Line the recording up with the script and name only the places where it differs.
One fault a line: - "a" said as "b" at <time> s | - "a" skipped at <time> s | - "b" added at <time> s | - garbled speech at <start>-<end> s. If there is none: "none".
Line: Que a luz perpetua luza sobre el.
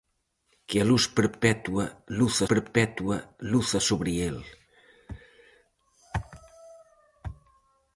- "perpetua luza" added at 2.5 s